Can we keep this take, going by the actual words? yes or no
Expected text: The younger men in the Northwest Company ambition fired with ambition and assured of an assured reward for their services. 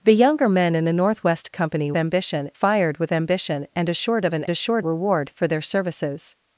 yes